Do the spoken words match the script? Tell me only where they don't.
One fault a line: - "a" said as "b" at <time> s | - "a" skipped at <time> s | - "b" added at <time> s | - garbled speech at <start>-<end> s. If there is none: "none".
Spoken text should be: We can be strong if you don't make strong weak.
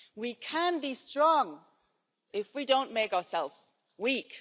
- "you" said as "we" at 2.5 s
- "strong" said as "ourselves" at 3.1 s